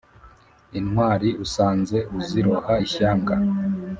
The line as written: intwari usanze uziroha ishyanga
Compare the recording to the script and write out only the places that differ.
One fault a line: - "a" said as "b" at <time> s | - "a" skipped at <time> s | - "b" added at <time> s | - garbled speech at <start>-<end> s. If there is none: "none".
none